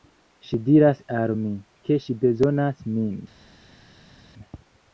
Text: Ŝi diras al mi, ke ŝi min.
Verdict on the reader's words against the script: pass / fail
fail